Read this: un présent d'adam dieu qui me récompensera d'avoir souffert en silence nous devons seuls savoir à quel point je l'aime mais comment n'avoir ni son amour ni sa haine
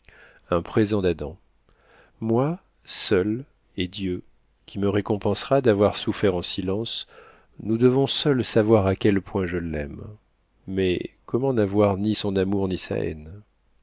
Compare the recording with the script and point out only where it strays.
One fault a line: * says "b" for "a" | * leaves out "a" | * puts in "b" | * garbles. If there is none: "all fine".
* puts in "moi seul et"